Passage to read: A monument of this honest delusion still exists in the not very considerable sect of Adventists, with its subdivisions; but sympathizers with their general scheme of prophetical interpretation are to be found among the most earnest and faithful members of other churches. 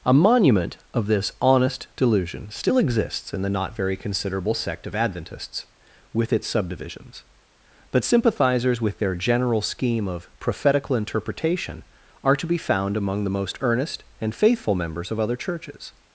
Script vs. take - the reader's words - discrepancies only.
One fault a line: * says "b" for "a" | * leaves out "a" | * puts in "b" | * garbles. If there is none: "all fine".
all fine